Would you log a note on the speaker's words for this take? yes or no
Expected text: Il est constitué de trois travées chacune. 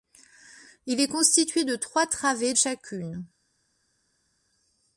no